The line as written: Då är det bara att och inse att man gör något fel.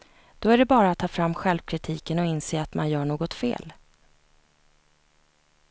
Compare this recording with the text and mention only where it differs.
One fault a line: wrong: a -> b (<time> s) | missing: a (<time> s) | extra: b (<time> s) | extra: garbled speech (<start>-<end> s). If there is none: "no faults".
extra: ta fram självkritiken (1.0 s)